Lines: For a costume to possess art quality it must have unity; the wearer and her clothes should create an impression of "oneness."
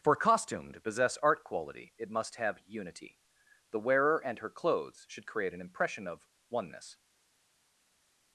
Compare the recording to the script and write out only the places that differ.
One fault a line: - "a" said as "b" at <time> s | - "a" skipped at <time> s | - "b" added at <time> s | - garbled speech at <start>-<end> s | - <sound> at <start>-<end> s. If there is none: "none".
- "a" skipped at 0.1 s